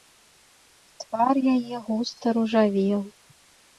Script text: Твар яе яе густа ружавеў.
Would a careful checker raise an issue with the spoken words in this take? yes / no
yes